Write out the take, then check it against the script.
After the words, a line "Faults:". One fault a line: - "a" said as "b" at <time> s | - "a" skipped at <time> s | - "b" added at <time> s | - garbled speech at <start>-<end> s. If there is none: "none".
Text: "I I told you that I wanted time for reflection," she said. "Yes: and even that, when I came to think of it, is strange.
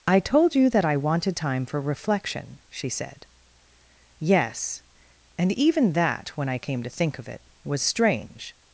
"I told you that I wanted time for reflection," she said. "Yes: and even that, when I came to think of it, was strange.
Faults:
- "I" skipped at 0.2 s
- "is" said as "was" at 7.7 s